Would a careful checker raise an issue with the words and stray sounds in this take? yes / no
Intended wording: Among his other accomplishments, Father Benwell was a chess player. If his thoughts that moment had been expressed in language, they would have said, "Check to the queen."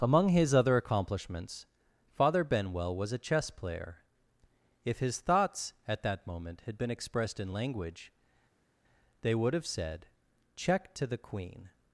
yes